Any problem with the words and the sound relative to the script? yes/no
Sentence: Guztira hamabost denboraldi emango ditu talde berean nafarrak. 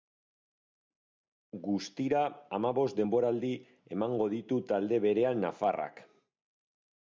no